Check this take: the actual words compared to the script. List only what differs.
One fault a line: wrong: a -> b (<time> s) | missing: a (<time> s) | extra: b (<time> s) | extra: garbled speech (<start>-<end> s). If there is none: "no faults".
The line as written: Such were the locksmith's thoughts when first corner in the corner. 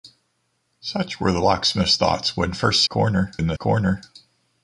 no faults